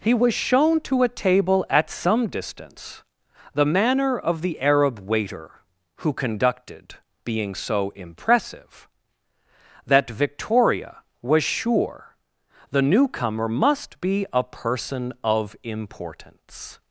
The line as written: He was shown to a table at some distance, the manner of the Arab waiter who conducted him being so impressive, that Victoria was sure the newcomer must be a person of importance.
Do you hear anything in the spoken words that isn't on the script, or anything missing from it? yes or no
yes